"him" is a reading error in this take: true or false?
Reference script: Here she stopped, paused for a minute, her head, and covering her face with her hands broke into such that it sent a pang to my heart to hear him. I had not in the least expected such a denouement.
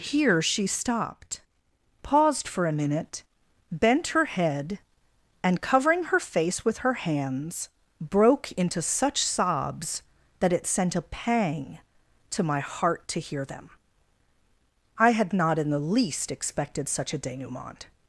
true